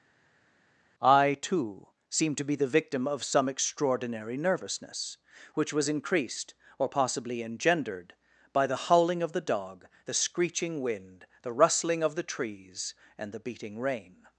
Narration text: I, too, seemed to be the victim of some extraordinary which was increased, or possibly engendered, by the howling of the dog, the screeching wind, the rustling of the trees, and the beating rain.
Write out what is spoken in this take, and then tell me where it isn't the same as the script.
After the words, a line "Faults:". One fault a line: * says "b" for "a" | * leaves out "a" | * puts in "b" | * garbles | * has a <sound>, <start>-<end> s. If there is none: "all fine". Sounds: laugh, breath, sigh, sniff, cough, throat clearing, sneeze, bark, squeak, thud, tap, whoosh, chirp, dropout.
I, too, seemed to be the victim of some extraordinary nervousness, which was increased, or possibly engendered, by the howling of the dog, the screeching wind, the rustling of the trees, and the beating rain.
Faults:
* puts in "nervousness"